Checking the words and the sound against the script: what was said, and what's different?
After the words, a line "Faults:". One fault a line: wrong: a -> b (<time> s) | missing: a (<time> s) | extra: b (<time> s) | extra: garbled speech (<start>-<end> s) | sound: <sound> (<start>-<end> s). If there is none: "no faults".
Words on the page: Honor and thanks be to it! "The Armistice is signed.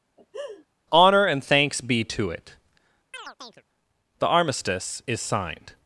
Honor and thanks be to it! "The Armistice is signed.
Faults:
sound: laugh (0.2-0.7 s)
sound: chirp (3.1-3.6 s)